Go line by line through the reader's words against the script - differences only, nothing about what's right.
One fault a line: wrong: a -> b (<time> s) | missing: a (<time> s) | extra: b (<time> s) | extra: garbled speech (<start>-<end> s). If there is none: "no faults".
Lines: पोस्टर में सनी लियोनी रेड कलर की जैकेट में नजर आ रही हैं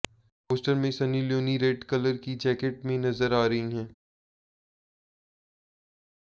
no faults